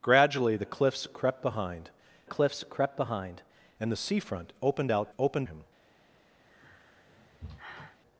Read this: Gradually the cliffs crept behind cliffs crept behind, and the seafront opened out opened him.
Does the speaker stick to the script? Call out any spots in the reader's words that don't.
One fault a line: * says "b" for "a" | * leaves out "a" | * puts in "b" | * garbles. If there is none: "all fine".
all fine